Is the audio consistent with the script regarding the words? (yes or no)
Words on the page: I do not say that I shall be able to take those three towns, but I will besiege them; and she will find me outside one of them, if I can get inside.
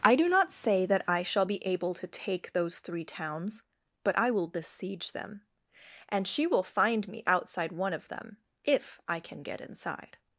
yes